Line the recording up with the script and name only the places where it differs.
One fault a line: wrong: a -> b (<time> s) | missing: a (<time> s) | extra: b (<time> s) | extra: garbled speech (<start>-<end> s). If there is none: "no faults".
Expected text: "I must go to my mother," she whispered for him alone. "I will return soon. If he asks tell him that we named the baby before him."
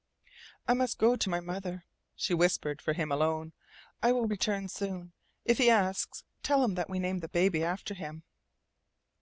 wrong: before -> after (7.6 s)